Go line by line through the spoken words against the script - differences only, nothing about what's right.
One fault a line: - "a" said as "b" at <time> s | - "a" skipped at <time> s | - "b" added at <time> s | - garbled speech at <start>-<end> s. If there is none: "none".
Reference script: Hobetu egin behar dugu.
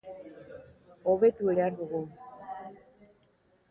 - "egin" skipped at 1.5 s